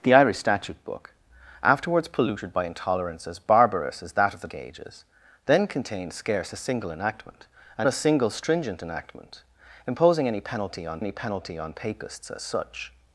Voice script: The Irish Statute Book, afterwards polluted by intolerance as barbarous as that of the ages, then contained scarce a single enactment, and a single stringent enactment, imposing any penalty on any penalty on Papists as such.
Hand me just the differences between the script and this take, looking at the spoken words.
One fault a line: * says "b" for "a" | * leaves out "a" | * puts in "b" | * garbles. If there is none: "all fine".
all fine